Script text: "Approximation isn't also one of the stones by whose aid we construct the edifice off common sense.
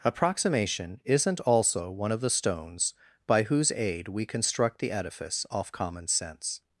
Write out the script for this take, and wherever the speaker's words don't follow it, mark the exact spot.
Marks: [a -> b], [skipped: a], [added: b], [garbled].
"Approximation isn't also one of the stones by whose aid we construct the edifice off common sense.